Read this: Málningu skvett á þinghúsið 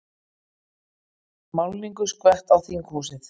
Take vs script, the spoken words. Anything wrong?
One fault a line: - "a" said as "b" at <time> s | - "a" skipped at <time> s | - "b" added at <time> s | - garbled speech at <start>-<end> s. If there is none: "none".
none